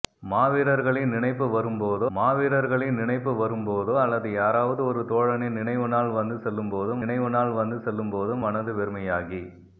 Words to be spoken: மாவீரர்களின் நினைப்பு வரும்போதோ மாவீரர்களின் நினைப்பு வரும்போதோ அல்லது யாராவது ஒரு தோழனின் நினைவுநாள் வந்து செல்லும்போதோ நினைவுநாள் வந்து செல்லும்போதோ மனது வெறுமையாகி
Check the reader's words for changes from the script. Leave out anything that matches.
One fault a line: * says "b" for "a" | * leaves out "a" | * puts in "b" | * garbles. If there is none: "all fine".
all fine